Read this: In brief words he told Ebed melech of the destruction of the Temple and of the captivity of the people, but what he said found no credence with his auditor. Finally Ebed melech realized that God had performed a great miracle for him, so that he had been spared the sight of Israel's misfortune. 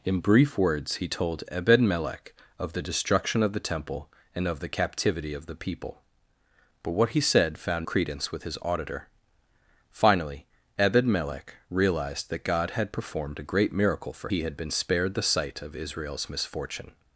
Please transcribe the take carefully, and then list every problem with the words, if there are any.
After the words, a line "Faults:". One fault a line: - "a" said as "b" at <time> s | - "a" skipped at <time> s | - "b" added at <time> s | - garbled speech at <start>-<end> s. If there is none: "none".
In brief words he told Ebed melech of the destruction of the Temple and of the captivity of the people, but what he said found credence with his auditor. Finally Ebed melech realized that God had performed a great miracle for he had been spared the sight of Israel's misfortune.
Faults:
- "no" skipped at 7.9 s
- "him so that" skipped at 14.3 s